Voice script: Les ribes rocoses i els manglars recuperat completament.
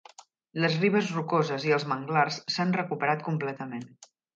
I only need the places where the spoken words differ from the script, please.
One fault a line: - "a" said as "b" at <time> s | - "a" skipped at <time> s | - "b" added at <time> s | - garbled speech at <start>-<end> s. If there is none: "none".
- "s'han" added at 2.6 s